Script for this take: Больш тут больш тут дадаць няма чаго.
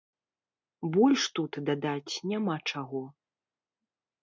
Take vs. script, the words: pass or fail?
fail